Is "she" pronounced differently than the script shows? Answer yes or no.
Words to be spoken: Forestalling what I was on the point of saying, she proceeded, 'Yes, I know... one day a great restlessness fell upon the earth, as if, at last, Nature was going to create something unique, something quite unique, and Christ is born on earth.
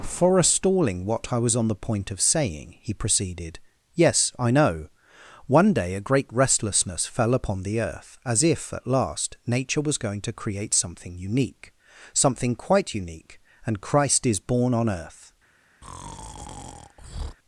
yes